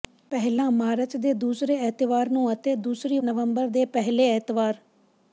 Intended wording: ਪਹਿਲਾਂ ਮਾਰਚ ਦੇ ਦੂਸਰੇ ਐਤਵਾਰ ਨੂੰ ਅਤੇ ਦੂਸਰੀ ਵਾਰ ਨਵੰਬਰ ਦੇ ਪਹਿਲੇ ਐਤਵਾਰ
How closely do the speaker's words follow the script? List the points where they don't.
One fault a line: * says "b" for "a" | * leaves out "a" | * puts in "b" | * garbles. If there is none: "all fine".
* leaves out "ਵਾਰ"